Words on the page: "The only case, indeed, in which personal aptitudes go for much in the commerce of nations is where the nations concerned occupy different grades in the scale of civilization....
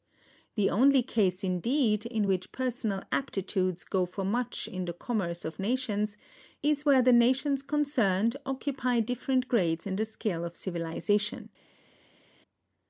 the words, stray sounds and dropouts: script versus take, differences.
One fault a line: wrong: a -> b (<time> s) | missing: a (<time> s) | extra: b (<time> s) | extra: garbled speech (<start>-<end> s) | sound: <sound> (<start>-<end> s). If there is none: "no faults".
no faults